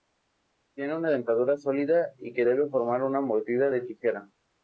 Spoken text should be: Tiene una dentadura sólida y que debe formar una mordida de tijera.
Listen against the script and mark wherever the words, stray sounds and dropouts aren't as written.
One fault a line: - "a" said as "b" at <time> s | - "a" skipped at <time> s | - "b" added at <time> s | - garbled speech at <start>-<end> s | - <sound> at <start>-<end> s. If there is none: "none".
none